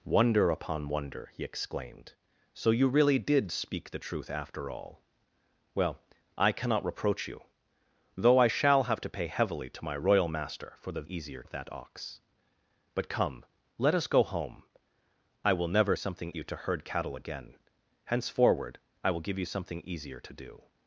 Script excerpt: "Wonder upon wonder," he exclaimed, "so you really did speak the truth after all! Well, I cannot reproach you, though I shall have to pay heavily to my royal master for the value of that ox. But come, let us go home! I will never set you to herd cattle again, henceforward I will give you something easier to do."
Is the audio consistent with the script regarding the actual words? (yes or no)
no